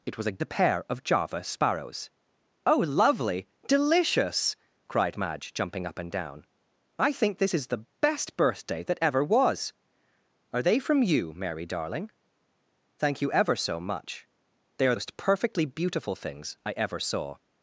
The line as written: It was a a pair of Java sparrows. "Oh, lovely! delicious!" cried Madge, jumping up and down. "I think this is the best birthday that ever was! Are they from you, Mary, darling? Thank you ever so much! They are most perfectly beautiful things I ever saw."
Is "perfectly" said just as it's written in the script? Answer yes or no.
yes